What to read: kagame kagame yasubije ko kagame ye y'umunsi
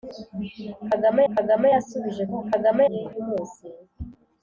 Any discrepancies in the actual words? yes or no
no